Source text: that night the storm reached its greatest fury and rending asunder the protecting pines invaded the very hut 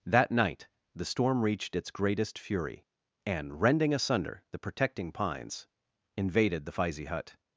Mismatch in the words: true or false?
true